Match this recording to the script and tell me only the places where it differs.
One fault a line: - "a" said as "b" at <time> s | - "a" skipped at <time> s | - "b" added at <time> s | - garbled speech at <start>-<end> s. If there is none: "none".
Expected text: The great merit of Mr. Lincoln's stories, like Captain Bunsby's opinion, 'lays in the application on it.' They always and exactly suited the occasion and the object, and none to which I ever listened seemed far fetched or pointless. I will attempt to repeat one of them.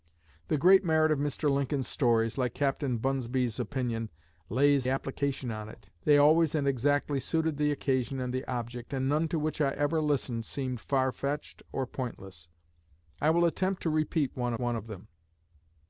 - "in the" skipped at 4.9 s
- "one" added at 14.6 s